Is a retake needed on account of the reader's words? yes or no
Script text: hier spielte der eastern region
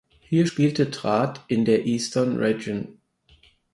yes